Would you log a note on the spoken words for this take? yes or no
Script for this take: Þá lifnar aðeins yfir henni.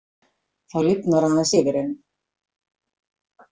no